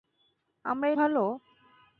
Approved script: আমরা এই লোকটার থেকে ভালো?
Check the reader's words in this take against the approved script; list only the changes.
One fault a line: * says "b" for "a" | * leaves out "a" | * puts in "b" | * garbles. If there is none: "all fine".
* leaves out "লোকটার থেকে"